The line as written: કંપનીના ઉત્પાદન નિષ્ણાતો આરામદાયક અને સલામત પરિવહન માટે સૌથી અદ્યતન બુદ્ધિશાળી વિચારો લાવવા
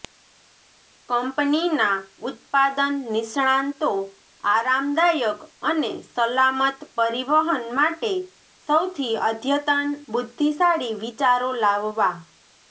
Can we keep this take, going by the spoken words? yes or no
yes